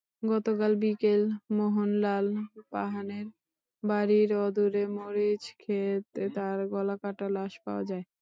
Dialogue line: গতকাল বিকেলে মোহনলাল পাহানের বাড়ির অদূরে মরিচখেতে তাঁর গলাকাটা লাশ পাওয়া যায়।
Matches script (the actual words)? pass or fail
pass